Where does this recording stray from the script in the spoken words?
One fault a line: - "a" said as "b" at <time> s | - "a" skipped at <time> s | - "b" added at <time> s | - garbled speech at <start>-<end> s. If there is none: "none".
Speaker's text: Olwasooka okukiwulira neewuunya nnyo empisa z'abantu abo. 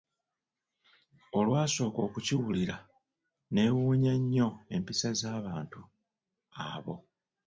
none